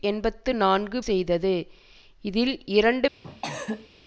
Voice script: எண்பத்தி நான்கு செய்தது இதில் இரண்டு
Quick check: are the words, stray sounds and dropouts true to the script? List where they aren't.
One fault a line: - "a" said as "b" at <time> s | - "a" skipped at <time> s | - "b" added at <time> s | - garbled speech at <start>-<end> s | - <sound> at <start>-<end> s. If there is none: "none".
- cough at 3.2-3.9 s